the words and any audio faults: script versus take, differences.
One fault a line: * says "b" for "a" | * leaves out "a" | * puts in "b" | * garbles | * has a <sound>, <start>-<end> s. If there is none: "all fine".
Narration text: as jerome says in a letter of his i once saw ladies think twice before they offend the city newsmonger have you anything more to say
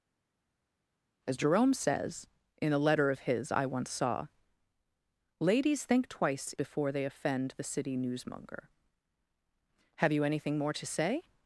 all fine